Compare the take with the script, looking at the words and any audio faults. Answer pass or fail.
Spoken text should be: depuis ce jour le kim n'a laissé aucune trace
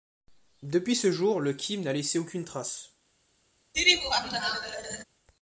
fail